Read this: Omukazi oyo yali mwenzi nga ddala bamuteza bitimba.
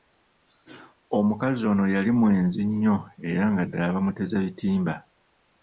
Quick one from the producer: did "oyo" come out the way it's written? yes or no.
no